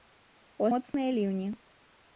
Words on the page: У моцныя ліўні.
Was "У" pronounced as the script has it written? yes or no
yes